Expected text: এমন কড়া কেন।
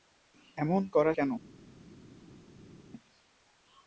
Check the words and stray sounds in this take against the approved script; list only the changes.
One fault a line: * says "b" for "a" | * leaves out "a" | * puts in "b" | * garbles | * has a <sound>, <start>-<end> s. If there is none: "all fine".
all fine